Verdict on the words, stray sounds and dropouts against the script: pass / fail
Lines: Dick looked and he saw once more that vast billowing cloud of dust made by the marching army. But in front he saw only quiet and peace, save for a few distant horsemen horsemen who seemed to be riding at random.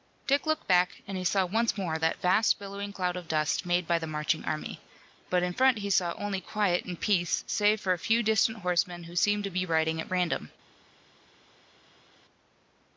fail